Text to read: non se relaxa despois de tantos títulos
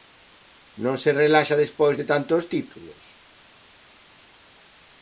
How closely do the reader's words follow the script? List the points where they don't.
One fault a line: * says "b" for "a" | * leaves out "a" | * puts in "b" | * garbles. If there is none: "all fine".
all fine